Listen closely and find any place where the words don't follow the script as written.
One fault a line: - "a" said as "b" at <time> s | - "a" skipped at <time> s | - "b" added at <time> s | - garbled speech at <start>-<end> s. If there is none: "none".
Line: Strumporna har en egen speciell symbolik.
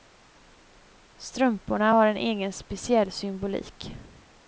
none